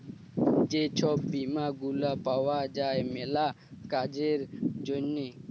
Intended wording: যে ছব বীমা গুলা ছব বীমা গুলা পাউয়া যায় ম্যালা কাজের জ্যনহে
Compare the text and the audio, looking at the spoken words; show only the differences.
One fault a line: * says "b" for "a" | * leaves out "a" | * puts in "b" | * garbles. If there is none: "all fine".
* leaves out "ছব বীমা গুলা"